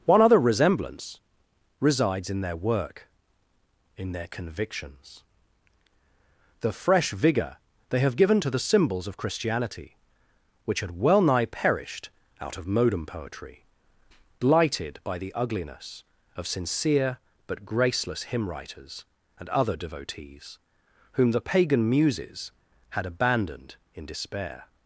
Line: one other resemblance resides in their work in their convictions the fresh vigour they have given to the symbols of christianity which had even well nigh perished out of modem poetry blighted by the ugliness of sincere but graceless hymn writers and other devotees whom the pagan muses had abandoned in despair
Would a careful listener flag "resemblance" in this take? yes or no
no